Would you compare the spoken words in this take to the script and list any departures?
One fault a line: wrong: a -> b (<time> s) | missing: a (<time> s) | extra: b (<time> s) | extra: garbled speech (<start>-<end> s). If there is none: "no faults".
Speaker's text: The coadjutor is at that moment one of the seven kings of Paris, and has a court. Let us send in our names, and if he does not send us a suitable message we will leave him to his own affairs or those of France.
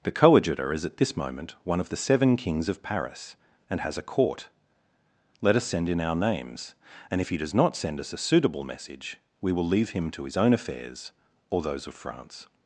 wrong: that -> this (1.0 s)